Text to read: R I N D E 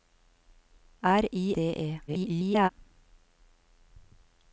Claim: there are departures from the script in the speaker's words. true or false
true